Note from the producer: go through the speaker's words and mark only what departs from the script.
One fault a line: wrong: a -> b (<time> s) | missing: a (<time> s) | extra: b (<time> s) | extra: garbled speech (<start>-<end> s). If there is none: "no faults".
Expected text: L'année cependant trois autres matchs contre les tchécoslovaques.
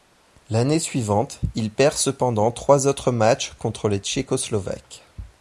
extra: suivante il perd (0.8 s)